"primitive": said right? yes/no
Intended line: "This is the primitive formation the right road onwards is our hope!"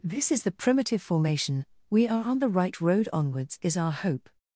yes